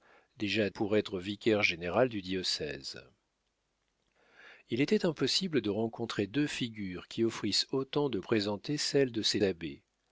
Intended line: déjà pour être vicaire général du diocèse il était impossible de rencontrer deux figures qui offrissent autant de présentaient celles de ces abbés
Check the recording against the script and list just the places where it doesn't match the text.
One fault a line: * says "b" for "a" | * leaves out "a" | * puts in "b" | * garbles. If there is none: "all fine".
all fine